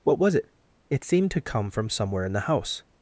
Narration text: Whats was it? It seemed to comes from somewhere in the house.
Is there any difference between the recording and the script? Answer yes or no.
yes